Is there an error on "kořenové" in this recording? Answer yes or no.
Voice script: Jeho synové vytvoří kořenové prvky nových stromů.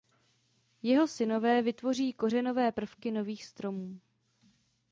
no